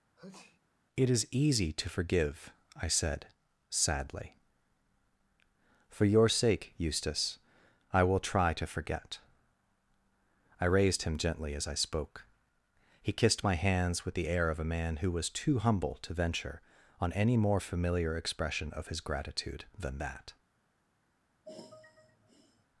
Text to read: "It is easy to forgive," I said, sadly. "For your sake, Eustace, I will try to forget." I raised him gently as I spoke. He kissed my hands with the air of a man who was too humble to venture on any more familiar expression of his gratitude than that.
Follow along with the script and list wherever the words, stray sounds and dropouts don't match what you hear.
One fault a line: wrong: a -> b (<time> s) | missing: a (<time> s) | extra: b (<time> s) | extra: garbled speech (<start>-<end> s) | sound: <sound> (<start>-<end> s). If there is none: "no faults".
sound: sneeze (0.2-0.6 s)
sound: sigh (21.4-22.7 s)